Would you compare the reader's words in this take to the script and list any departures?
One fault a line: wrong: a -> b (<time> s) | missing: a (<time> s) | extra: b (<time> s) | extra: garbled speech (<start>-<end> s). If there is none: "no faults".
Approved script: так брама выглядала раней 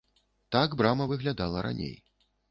no faults